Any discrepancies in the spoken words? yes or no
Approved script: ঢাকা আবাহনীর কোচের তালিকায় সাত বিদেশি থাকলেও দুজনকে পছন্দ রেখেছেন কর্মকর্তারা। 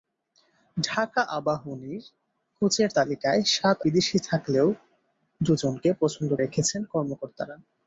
no